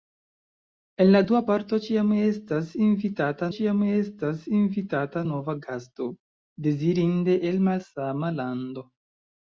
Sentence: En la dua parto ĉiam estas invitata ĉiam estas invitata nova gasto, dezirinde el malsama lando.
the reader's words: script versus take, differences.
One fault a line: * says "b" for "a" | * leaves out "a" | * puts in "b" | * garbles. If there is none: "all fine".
all fine